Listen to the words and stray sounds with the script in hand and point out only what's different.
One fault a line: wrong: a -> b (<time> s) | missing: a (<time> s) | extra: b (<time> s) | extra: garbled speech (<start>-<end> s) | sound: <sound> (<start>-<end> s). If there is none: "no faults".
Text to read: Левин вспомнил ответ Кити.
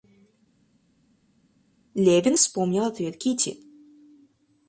no faults